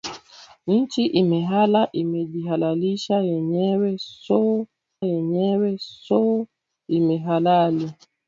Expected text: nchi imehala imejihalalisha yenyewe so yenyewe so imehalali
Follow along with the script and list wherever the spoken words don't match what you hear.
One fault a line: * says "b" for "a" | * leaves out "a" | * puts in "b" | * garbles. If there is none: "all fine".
all fine